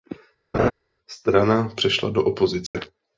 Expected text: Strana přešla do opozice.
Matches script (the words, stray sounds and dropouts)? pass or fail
fail